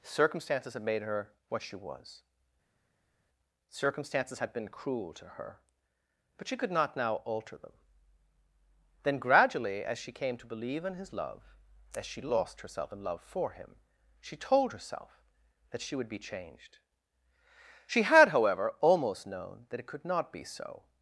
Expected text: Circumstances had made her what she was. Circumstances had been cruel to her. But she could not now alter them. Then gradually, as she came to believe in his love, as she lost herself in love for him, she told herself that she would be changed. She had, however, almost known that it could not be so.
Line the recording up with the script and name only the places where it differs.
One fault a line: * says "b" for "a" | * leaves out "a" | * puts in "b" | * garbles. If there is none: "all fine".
all fine